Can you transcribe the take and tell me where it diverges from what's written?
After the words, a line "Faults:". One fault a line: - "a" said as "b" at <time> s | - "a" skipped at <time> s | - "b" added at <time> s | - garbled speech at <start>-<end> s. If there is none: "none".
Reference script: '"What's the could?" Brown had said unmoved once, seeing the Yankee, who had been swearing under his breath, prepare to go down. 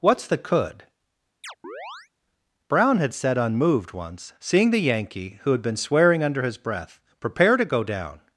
'"What's the could?" Brown had said unmoved once, seeing the Yankee, who had been swearing under his breath, prepare to go down.
Faults:
none